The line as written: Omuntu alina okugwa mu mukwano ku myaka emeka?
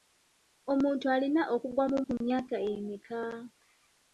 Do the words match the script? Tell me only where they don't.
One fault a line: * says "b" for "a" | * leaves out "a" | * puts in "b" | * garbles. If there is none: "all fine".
* leaves out "mukwano"